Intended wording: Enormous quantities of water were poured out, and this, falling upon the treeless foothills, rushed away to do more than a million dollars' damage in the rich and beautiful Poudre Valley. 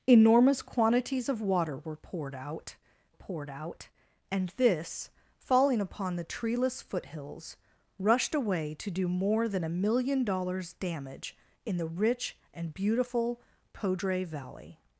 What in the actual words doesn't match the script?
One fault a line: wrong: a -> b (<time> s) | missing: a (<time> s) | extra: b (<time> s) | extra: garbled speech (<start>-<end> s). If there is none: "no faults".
extra: poured out (3.1 s)